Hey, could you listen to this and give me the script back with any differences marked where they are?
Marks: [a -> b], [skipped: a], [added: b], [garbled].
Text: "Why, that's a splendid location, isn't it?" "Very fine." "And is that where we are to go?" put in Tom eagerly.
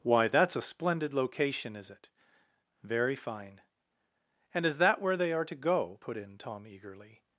"Why, that's a splendid location, [isn't -> is] it?" "Very fine." "And is that where [we -> they] are to go?" put in Tom eagerly.